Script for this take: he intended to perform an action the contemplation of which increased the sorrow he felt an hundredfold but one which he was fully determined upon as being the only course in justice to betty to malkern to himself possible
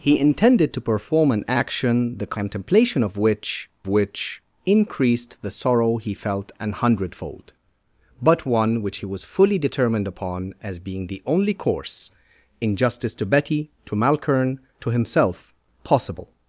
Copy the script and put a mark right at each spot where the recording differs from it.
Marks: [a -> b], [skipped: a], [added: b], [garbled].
he intended to perform an action the contemplation of which [added: which] increased the sorrow he felt an hundredfold but one which he was fully determined upon as being the only course in justice to betty to malkern to himself possible